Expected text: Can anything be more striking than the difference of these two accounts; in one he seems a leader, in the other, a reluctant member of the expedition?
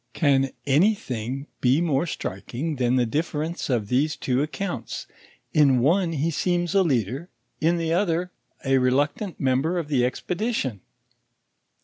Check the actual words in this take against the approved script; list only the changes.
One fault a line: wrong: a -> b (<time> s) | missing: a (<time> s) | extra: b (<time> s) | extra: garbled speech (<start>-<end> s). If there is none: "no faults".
no faults